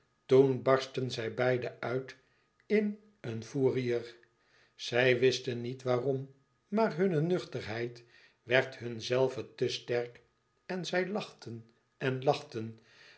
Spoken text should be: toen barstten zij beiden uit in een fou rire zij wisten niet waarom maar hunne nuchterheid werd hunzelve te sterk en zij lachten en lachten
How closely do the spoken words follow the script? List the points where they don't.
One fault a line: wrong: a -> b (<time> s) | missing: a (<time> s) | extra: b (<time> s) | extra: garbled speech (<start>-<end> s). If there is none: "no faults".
no faults